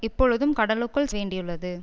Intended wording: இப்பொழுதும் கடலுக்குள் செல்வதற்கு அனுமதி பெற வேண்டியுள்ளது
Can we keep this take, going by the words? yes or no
no